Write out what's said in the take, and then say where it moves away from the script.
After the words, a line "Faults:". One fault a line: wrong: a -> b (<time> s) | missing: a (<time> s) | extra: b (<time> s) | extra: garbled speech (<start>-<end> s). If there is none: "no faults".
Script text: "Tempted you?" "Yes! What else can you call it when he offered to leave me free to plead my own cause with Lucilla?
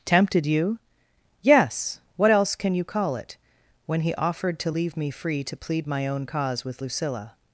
"Tempted you?" "Yes! What else can you call it when he offered to leave me free to plead my own cause with Lucilla?
Faults:
no faults